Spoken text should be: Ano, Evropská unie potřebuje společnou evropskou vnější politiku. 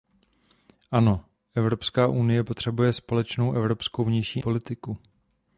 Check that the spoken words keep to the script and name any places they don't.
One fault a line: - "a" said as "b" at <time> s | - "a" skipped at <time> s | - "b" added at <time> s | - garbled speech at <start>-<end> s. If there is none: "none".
none